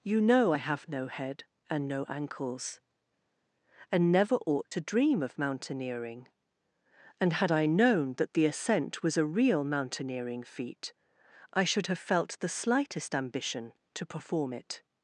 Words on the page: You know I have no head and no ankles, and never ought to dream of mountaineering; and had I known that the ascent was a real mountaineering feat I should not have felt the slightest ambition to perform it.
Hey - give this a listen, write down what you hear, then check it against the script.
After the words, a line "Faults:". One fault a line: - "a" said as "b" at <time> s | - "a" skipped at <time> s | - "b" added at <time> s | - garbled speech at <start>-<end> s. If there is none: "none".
You know I have no head and no ankles, and never ought to dream of mountaineering; and had I known that the ascent was a real mountaineering feat I should have felt the slightest ambition to perform it.
Faults:
- "not" skipped at 11.9 s